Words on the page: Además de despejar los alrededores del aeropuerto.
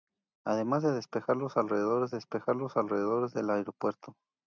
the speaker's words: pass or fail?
fail